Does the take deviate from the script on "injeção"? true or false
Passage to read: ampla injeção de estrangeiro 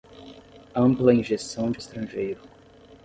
false